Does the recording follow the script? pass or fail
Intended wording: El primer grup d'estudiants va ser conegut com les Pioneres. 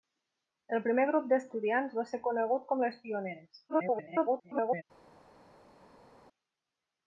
fail